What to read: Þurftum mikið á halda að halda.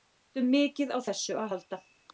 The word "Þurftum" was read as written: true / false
true